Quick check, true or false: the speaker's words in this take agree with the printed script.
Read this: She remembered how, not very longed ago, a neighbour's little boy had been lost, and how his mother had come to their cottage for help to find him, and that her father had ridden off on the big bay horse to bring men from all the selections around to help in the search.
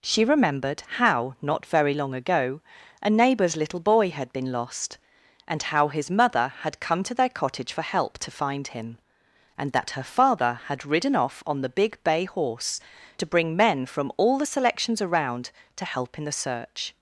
false